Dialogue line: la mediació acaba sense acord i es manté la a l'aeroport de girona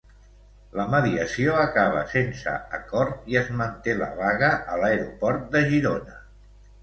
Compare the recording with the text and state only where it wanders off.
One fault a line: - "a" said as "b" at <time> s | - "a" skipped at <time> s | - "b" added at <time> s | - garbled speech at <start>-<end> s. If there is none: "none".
- "vaga" added at 4.2 s